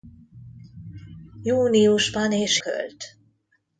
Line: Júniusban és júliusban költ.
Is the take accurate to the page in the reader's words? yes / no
no